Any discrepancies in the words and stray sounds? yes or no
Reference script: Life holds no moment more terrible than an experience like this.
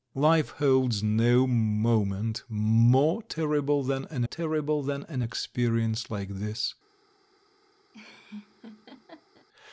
yes